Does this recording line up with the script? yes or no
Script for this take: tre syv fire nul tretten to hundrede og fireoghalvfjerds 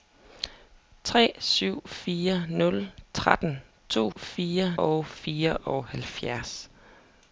no